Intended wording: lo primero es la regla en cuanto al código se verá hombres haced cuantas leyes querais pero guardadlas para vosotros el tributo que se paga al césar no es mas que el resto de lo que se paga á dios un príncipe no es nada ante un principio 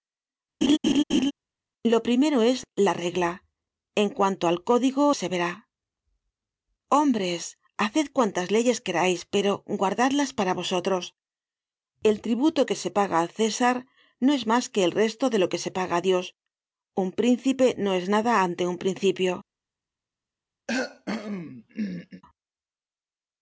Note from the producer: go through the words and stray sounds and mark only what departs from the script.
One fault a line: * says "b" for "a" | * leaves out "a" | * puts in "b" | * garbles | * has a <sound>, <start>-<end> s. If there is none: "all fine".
* has a laugh, 0.6-1.3 s
* has a cough, 20.7-22.2 s